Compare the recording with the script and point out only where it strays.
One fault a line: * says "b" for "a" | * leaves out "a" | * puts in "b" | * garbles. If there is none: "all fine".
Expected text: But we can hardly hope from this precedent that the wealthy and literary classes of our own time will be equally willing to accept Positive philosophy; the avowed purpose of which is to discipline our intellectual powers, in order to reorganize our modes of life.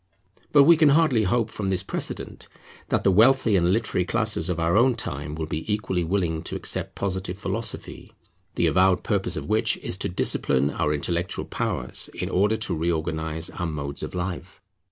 all fine